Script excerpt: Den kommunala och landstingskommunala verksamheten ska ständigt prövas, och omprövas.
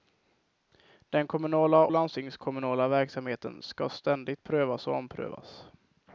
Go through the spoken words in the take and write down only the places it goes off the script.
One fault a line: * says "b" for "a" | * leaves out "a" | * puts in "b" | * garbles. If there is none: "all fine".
* leaves out "och"